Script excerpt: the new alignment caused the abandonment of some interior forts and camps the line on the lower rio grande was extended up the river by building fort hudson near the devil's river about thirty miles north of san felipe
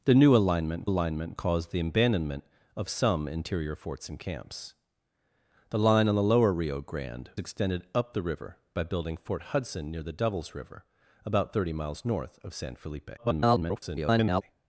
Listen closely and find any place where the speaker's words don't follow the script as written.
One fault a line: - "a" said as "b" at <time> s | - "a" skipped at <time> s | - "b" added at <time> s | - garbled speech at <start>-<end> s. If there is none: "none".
- "alignment" added at 0.8 s
- "was" skipped at 7.3 s
- garbled speech at 13.2-14.4 s